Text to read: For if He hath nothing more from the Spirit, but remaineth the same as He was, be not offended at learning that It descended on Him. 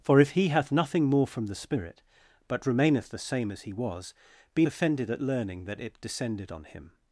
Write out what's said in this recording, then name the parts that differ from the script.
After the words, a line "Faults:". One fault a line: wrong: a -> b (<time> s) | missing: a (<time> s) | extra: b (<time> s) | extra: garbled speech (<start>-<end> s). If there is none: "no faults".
For if He hath nothing more from the Spirit, but remaineth the same as He was, be offended at learning that It descended on Him.
Faults:
missing: not (4.7 s)